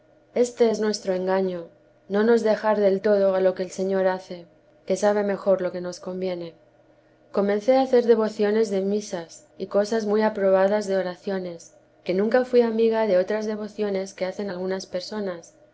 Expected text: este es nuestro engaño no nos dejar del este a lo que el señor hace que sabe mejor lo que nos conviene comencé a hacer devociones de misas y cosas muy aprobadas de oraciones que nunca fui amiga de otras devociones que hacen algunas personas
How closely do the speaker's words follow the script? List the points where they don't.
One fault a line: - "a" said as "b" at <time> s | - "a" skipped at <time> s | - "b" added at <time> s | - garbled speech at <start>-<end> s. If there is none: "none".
- "este" said as "todo" at 3.0 s